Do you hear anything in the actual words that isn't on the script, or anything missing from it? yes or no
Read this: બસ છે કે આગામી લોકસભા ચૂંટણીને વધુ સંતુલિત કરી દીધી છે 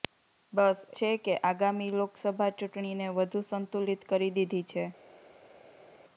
no